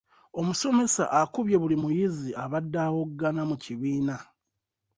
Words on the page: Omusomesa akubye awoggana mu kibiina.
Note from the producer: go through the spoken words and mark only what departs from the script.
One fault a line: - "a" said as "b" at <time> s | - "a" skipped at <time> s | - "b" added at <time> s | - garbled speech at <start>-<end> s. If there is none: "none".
- "buli muyizi abadde" added at 1.6 s